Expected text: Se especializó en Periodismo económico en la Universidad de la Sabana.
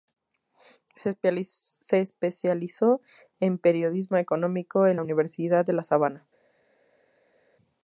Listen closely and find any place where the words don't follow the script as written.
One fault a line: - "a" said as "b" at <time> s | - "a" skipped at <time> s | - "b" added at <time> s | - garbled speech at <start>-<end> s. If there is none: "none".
none